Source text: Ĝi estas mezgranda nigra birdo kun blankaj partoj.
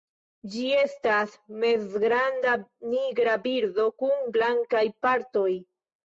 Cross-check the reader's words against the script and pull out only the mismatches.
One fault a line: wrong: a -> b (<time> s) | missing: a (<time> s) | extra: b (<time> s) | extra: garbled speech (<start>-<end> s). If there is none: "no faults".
no faults